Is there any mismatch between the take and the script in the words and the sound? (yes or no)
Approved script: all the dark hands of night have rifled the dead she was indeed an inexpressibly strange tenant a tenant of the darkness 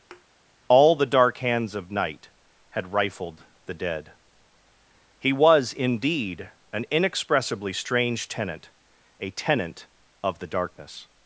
yes